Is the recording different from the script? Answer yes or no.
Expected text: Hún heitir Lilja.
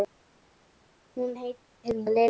no